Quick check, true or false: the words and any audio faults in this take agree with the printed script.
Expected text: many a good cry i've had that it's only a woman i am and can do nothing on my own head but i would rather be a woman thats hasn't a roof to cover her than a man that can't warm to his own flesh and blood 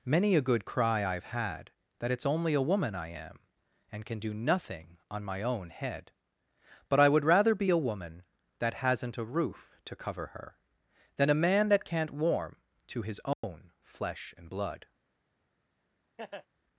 false